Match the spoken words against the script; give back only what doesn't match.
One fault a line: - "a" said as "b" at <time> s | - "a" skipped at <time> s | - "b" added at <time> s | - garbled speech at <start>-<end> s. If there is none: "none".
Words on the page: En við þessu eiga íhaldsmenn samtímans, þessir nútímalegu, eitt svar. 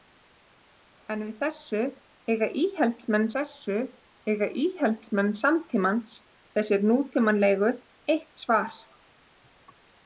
- "þessu eiga íhaldsmenn" added at 3.4 s